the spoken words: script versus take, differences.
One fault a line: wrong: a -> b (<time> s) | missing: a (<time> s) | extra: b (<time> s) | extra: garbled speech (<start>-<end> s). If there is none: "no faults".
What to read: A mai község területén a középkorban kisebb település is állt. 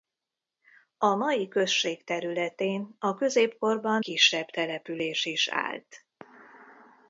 no faults